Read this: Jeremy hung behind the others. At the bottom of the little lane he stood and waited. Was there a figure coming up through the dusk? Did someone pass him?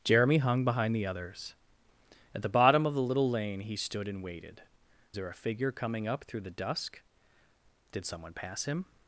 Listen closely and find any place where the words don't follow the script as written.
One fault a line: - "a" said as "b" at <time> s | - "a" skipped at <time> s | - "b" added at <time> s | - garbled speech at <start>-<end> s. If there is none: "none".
- "Was" skipped at 4.6 s